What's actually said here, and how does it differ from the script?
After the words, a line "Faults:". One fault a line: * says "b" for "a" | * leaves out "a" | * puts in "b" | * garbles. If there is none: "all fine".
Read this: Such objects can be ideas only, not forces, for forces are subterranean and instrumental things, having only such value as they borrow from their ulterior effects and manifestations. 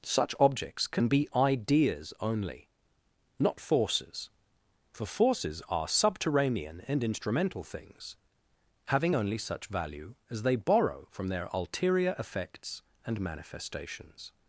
Such objects can be ideas only, not forces, for forces are subterranean and instrumental things, having only such value as they borrow from their ulterior effects and manifestations.
Faults:
all fine